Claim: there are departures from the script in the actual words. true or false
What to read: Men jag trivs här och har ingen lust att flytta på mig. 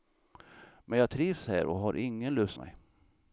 true